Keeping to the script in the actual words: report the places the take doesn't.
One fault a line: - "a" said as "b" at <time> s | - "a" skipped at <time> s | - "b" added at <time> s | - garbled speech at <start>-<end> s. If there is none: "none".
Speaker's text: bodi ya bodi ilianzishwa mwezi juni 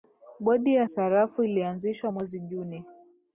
- "bodi" said as "sarafu" at 0.9 s